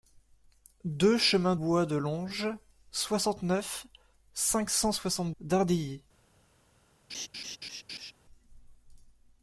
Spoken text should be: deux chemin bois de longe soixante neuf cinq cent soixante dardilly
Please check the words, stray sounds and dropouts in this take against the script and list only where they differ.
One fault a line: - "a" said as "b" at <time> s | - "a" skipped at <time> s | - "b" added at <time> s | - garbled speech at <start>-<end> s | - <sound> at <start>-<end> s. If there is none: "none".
- laugh at 7.1-8.1 s